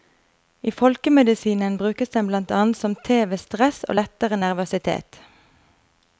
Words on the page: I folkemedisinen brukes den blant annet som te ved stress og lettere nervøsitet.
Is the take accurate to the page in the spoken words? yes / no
yes